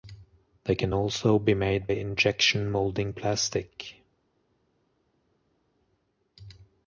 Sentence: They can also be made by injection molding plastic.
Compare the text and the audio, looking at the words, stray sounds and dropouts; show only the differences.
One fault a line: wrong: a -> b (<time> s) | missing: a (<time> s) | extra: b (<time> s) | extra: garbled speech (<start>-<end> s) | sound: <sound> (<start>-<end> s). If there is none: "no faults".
missing: by (1.9 s)